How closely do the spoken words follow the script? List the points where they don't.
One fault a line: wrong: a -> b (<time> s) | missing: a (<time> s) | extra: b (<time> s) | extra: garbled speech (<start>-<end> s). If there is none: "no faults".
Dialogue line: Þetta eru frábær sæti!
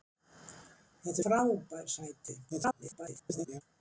missing: eru (1.2 s)
extra: garbled speech (2.5-3.6 s)